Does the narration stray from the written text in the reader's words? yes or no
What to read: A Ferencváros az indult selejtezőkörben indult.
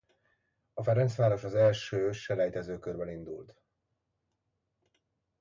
yes